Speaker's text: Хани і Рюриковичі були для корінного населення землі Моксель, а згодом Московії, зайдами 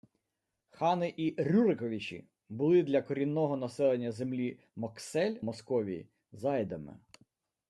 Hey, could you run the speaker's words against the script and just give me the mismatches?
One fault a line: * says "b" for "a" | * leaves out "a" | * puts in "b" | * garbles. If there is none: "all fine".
* leaves out "а згодом"